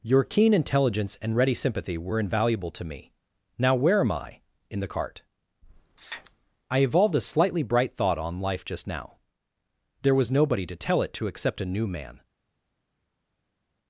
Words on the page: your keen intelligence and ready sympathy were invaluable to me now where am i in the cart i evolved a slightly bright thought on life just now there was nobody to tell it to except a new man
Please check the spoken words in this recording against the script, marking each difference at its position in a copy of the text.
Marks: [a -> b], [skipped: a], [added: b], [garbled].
your keen intelligence and ready sympathy were invaluable to me now where am i in the cart i evolved a slightly bright thought on life just now there was nobody to tell it to except a new man